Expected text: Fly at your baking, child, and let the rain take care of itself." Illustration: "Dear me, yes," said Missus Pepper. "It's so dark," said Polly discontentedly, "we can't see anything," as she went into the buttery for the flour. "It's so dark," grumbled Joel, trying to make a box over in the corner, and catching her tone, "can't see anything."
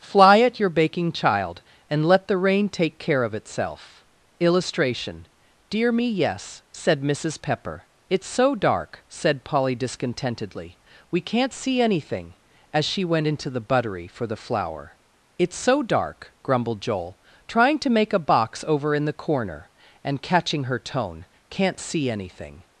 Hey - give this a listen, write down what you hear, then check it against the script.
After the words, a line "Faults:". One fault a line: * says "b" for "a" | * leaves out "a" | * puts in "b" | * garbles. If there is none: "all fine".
Fly at your baking, child, and let the rain take care of itself." Illustration: "Dear me, yes," said Missus Pepper. "It's so dark," said Polly discontentedly, "we can't see anything," as she went into the buttery for the flour. "It's so dark," grumbled Joel, trying to make a box over in the corner, and catching her tone, "can't see anything."
Faults:
all fine